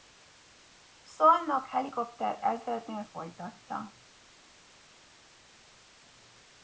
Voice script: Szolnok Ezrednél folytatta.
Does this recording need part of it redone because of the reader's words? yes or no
yes